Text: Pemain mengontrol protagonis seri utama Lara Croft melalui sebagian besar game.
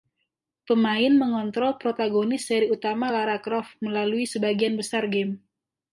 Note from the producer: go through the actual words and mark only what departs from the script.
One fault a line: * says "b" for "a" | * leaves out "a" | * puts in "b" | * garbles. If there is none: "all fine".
all fine